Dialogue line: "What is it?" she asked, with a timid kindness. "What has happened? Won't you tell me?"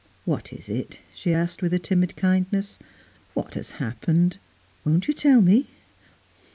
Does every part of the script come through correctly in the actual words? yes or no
yes